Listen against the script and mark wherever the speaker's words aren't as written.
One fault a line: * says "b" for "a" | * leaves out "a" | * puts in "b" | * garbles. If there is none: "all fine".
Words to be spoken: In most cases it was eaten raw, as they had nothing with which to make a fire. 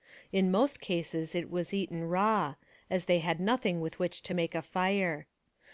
all fine